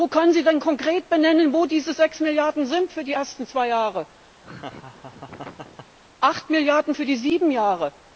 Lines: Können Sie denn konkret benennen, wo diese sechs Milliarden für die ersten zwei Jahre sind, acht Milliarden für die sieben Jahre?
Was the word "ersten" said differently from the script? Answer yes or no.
no